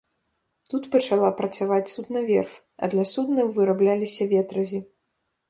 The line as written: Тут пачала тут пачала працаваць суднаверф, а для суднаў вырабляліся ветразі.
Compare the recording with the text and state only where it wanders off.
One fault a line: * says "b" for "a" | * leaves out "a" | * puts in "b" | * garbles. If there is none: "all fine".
* leaves out "тут пачала"